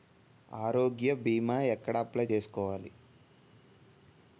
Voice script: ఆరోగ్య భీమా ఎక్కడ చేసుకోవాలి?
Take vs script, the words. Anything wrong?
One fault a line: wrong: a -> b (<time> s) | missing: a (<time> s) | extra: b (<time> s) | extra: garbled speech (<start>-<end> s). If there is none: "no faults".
extra: అప్లయ్ (2.0 s)